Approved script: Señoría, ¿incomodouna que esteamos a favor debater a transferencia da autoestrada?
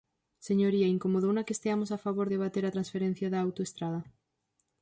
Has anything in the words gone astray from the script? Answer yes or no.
no